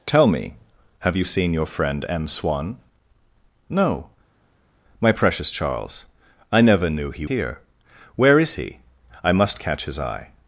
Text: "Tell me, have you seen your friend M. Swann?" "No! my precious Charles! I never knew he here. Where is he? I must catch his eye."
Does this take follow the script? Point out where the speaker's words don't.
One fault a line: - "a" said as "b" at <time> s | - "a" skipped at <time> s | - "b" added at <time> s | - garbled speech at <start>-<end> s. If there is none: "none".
none